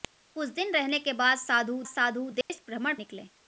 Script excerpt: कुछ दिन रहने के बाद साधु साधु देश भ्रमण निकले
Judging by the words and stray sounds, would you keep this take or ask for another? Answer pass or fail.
fail